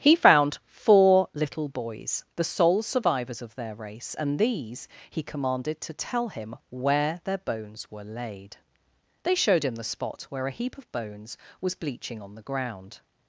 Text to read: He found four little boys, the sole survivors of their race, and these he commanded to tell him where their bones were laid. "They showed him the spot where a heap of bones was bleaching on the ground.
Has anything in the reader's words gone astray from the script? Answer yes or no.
no